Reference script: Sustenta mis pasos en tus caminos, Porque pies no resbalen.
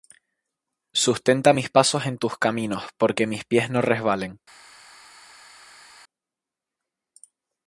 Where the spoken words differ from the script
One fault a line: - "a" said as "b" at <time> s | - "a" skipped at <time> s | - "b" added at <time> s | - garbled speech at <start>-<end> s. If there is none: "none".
- "mis" added at 3.3 s